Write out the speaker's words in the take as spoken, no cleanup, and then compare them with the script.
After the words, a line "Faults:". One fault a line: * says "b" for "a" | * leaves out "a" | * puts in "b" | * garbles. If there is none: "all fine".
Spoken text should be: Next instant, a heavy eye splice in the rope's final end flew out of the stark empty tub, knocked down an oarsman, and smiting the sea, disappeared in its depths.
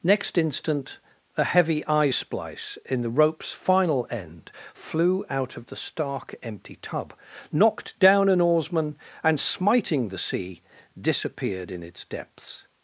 Next instant, a heavy eye splice in the rope's final end flew out of the stark empty tub, knocked down an oarsman, and smiting the sea, disappeared in its depths.
Faults:
all fine